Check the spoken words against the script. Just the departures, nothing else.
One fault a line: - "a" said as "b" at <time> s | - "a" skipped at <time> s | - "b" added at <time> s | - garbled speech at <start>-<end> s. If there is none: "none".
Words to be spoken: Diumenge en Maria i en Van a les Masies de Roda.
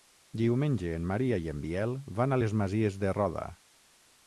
- "Biel" added at 1.6 s